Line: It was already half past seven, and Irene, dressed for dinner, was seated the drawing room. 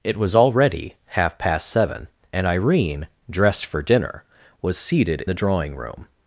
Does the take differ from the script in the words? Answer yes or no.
no